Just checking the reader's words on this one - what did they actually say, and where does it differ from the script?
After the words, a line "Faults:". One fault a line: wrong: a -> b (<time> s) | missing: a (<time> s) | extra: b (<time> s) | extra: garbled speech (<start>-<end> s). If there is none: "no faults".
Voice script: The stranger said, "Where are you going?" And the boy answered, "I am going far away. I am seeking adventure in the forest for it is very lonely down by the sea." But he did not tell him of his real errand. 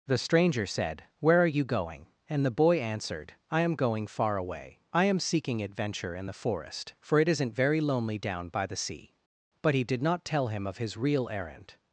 The stranger said, "Where are you going?" And the boy answered, "I am going far away. I am seeking adventure in the forest for it isn't very lonely down by the sea." But he did not tell him of his real errand.
Faults:
wrong: is -> isn't (7.3 s)